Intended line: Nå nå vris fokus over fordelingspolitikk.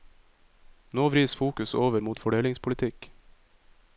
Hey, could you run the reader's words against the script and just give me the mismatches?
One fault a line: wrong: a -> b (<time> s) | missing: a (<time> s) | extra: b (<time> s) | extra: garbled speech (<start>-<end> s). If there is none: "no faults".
missing: nå (1.1 s)
extra: mot (2.0 s)